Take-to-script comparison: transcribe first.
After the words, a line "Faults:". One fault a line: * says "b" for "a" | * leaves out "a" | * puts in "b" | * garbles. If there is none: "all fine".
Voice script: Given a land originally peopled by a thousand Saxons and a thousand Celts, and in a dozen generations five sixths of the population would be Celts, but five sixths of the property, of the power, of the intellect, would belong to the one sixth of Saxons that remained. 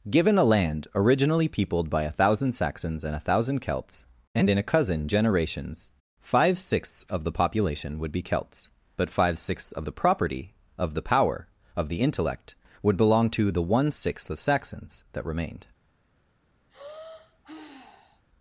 Given a land originally peopled by a thousand Saxons and a thousand Celts, and in a cousin generations five sixths of the population would be Celts, but five sixths of the property, of the power, of the intellect, would belong to the one sixth of Saxons that remained.
Faults:
* says "cousin" for "dozen"